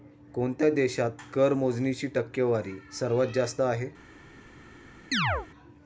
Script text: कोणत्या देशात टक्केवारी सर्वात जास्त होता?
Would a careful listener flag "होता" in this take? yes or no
yes